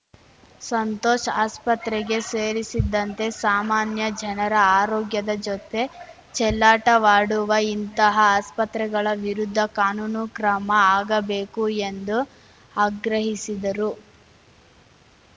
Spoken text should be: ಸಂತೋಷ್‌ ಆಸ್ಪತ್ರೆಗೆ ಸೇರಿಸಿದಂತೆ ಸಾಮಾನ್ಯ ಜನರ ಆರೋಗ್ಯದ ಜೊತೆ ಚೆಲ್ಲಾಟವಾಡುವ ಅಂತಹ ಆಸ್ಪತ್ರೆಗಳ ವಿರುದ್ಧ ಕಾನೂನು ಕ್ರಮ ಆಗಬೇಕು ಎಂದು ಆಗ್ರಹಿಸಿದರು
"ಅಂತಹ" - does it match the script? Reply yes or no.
no